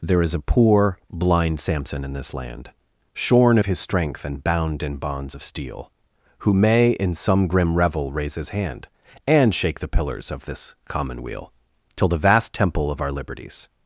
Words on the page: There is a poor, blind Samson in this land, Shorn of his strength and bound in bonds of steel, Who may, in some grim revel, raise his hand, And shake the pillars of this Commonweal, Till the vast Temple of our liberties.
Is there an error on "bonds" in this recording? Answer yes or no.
no